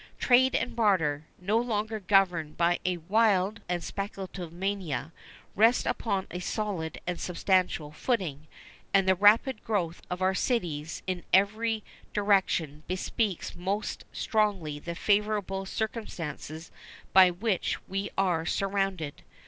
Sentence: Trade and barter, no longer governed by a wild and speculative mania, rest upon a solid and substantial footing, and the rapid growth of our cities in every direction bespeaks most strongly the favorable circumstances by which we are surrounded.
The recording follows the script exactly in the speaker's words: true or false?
true